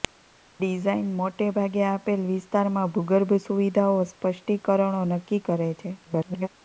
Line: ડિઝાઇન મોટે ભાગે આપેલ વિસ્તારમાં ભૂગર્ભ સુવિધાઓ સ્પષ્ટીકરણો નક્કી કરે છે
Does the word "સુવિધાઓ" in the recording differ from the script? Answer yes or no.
no